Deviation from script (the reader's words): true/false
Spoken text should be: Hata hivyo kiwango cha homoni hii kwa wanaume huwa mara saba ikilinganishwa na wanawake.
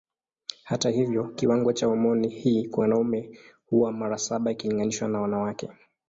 false